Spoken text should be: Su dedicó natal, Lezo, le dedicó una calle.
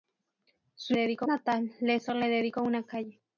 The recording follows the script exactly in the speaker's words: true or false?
true